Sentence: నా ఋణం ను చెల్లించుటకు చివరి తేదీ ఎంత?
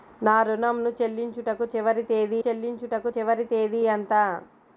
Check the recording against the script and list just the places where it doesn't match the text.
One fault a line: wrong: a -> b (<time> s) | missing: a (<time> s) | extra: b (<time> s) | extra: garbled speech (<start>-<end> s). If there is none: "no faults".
extra: చెల్లించుటకు చివరి తేదీ (2.4 s)